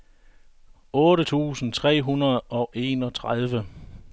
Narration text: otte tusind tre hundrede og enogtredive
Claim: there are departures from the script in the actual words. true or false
false